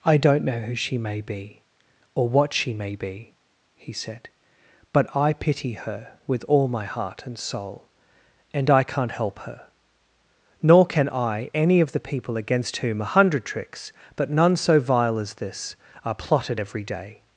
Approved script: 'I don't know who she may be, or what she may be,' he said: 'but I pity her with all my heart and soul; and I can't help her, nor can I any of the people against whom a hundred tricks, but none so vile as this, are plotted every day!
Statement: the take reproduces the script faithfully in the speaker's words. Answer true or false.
true